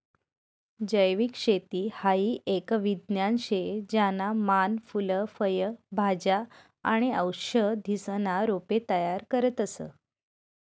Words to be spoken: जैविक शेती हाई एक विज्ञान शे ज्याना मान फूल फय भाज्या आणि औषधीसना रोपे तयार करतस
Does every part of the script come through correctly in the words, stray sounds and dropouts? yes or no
yes